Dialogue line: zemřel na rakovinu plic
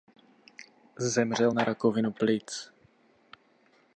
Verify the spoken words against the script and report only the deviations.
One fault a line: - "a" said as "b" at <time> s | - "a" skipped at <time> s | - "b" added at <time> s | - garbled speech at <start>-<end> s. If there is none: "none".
none